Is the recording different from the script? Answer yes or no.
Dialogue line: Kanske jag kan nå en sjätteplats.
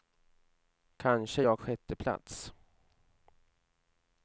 yes